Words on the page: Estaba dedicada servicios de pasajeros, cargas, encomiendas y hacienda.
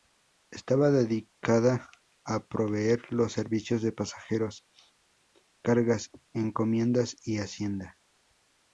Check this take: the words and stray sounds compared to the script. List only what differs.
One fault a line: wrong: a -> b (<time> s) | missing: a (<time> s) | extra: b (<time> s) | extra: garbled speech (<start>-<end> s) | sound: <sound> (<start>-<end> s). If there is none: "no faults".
extra: a proveer los (2.2 s)